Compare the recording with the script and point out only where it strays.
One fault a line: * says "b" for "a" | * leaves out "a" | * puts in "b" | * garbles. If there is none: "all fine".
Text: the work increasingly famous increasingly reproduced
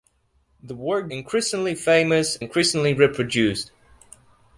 all fine